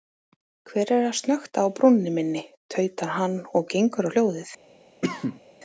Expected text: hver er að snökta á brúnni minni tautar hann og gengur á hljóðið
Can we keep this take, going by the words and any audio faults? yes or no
no